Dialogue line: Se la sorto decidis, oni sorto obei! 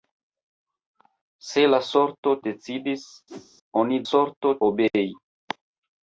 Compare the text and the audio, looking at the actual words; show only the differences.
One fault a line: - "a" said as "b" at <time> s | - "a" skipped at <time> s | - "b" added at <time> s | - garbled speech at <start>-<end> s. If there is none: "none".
none